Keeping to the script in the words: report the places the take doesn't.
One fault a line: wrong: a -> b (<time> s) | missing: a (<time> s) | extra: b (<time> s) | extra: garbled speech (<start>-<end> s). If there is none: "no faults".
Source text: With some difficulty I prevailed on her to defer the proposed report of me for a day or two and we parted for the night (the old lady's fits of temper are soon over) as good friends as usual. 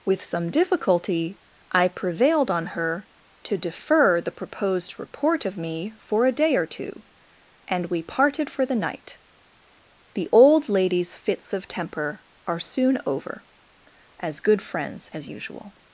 no faults